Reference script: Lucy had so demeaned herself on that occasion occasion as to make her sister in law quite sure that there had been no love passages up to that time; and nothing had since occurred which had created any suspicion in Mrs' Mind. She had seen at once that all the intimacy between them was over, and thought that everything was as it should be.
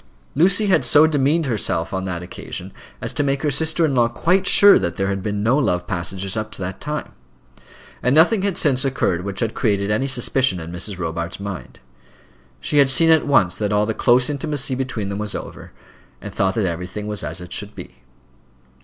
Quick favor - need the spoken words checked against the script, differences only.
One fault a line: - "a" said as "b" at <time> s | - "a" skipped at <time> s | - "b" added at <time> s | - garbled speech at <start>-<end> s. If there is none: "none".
- "occasion" skipped at 2.7 s
- "Robarts" added at 11.0 s
- "close" added at 13.9 s